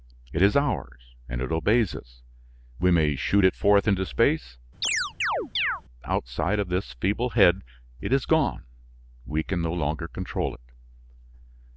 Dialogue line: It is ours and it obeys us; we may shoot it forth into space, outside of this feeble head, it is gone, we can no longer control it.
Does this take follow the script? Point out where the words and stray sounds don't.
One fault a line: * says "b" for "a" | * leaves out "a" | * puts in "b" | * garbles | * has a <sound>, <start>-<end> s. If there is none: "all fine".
* has a chirp, 4.8-5.8 s